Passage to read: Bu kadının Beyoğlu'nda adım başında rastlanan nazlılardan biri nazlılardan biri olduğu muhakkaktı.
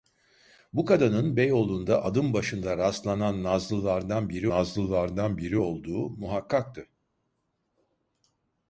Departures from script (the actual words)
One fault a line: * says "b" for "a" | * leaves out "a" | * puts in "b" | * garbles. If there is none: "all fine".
all fine